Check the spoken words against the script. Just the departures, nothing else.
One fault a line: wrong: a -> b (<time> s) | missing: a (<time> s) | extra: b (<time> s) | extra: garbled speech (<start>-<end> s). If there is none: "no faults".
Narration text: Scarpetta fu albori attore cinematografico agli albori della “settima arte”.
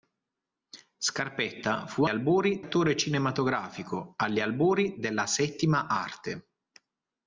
no faults